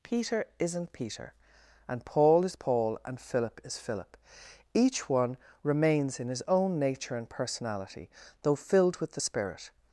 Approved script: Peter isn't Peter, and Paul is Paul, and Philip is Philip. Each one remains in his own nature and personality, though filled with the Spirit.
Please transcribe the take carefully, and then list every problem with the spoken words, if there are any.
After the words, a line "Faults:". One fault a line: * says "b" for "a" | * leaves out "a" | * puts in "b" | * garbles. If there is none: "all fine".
Peter isn't Peter, and Paul is Paul, and Philip is Philip. Each one remains in his own nature and personality, though filled with the Spirit.
Faults:
all fine